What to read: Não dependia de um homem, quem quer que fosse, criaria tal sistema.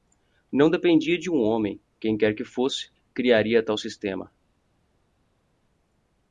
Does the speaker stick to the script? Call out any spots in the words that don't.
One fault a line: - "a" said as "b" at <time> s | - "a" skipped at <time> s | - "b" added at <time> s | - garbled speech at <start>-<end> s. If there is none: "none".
none